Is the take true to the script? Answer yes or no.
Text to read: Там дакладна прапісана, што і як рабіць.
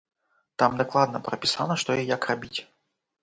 yes